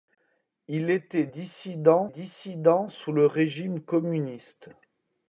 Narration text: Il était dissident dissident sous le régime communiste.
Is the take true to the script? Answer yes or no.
yes